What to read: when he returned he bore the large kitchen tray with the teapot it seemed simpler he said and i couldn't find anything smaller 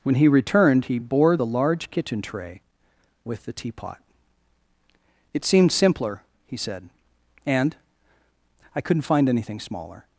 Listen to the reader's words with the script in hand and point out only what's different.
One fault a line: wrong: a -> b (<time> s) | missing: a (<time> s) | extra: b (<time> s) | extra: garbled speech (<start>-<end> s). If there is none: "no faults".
no faults